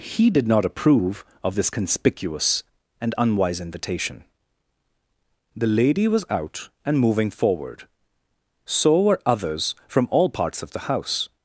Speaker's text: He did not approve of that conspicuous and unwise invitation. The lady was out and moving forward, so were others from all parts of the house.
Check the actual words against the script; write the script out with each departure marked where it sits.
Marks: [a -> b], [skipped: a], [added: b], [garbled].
He did not approve of [that -> this] conspicuous and unwise invitation. The lady was out and moving forward, so were others from all parts of the house.